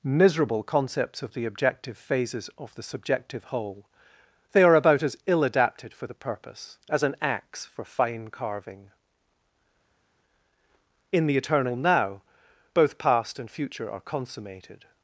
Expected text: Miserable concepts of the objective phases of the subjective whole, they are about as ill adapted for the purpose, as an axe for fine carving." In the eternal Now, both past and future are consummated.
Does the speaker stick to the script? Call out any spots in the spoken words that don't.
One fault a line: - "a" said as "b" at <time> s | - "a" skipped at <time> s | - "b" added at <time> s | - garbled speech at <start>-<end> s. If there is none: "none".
none